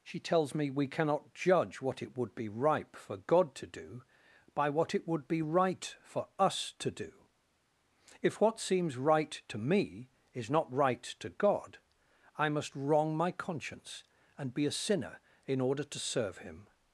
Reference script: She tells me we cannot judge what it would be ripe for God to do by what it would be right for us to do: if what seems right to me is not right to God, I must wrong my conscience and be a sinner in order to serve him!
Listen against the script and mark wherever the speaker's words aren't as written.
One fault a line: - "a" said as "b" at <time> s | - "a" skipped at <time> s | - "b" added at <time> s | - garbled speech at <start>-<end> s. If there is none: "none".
none